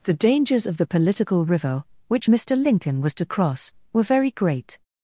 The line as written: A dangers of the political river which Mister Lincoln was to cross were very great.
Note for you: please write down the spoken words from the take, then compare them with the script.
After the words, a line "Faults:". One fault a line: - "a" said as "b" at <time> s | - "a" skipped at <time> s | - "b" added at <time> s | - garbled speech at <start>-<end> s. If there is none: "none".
The dangers of the political river which Mister Lincoln was to cross were very great.
Faults:
- "A" said as "The" at 0.0 s